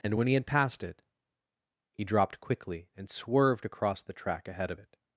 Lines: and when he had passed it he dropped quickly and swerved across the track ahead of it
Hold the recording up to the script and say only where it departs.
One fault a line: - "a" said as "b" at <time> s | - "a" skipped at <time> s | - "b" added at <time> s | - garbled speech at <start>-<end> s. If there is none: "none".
none